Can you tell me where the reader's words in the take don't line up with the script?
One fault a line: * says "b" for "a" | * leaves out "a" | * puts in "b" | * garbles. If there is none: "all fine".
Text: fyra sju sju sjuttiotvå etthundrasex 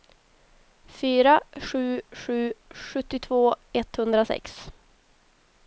all fine